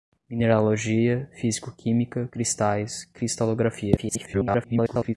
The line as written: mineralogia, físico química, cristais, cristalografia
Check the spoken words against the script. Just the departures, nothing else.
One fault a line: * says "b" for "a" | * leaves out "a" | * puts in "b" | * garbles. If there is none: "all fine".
* garbles